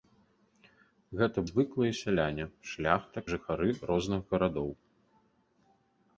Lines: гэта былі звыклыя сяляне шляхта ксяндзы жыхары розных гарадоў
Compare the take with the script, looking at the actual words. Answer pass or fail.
fail